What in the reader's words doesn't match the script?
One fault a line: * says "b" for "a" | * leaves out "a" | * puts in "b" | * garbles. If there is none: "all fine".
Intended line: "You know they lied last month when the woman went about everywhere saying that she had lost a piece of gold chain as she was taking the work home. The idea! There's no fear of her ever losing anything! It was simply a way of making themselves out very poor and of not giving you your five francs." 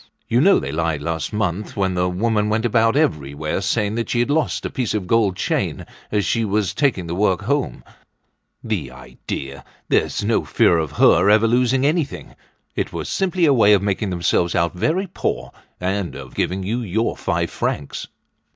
* leaves out "not"